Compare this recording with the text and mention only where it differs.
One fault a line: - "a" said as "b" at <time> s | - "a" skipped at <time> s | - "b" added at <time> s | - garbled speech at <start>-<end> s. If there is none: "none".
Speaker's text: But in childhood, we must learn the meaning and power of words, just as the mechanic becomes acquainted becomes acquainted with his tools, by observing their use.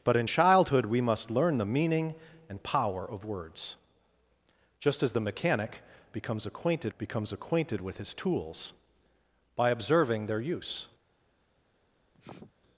none